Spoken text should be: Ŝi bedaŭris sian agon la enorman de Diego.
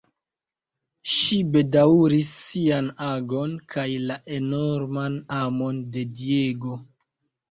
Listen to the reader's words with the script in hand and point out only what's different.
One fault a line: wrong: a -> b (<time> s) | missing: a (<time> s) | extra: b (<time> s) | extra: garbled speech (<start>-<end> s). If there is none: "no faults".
extra: kaj (3.7 s)
extra: amon (5.4 s)